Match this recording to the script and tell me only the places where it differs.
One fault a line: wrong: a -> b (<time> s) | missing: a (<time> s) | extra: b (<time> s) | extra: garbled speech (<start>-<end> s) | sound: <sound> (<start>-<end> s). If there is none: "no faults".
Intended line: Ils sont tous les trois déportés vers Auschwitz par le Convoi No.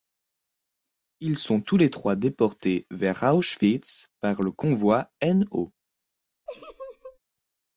sound: laugh (6.5-7.2 s)